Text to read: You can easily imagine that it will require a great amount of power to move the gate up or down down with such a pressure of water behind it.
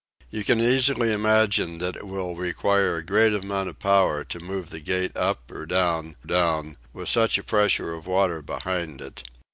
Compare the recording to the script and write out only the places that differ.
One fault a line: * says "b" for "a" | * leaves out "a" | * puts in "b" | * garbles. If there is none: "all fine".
all fine